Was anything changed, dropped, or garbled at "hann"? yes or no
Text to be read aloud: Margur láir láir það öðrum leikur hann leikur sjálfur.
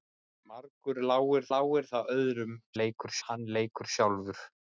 no